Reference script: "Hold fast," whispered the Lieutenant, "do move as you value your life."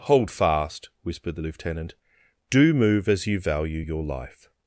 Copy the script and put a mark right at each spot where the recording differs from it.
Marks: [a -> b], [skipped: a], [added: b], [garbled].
"Hold fast," whispered the Lieutenant, "do move as you value your life."